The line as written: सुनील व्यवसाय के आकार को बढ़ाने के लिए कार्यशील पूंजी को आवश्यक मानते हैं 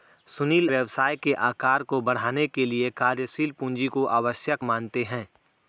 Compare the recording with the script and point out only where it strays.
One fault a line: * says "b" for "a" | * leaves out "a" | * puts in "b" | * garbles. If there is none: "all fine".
all fine